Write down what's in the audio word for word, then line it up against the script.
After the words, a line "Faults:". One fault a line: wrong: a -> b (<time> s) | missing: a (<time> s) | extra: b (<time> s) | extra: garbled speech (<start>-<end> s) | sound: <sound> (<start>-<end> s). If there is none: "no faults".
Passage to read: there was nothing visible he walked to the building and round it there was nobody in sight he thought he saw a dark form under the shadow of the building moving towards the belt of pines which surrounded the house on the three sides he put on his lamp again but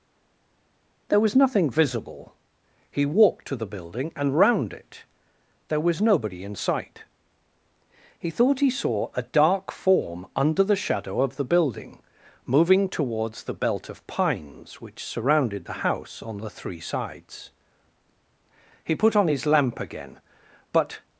there was nothing visible he walked to the building and round it there was nobody in sight he thought he saw a dark form under the shadow of the building moving towards the belt of pines which surrounded the house on the three sides he put on his lamp again but
Faults:
no faults